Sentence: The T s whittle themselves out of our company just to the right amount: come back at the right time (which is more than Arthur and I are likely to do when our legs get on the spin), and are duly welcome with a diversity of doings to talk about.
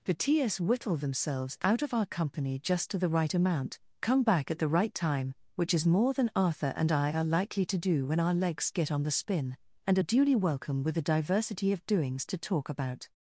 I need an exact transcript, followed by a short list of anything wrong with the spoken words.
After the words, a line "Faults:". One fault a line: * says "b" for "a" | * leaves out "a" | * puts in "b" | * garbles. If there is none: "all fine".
The T s whittle themselves out of our company just to the right amount: come back at the right time (which is more than Arthur and I are likely to do when our legs get on the spin), and are duly welcome with a diversity of doings to talk about.
Faults:
all fine